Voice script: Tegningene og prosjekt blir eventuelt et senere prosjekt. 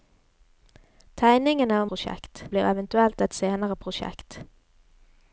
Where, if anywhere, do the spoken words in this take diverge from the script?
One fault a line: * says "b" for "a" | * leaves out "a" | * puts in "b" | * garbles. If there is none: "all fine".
all fine